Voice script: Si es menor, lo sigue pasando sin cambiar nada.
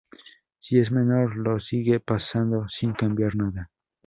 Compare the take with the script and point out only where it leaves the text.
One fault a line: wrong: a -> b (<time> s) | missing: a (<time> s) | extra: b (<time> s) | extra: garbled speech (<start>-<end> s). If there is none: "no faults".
no faults